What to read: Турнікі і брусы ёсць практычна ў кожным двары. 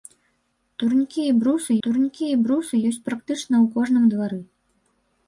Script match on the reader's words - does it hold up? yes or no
no